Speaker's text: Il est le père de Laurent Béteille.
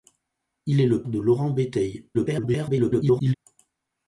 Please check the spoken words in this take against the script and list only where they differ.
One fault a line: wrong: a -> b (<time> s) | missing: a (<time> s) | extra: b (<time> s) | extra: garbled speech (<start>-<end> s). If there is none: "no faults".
missing: père (1.0 s)
extra: garbled speech (2.1-3.3 s)